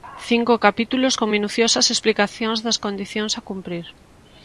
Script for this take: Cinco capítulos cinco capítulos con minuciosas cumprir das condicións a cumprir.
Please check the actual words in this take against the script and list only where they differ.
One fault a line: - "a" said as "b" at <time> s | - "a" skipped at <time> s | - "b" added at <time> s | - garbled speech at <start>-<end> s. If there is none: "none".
- "cinco capítulos" skipped at 1.1 s
- "cumprir" said as "explicacións" at 1.9 s